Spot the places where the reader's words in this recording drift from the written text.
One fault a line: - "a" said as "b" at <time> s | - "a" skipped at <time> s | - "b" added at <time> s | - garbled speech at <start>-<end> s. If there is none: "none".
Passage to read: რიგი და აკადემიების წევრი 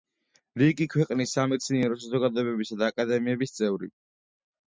- "ქვეყნის სამეცნიერო საზოგადოებებისა" added at 0.9 s